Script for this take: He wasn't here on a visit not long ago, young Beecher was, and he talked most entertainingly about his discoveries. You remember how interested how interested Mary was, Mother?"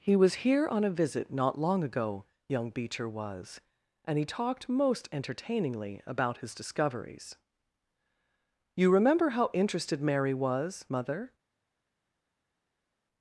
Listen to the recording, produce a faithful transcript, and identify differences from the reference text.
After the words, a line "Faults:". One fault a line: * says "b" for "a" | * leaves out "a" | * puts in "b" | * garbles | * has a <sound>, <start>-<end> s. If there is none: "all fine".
He was here on a visit not long ago, young Beecher was, and he talked most entertainingly about his discoveries. You remember how interested Mary was, Mother?"
Faults:
* says "was" for "wasn't"
* leaves out "how interested"